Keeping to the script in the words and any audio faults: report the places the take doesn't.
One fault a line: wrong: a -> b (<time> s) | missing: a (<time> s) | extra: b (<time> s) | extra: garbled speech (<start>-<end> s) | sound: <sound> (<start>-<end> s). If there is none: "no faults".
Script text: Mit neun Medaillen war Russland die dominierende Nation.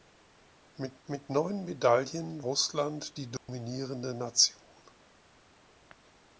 extra: mit (1.1 s)
missing: war (2.4 s)
sound: dropout (3.4-3.5 s)